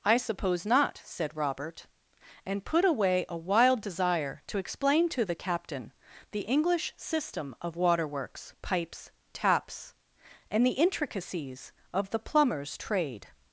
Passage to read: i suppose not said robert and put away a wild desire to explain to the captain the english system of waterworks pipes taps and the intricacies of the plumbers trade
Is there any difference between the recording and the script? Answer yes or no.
no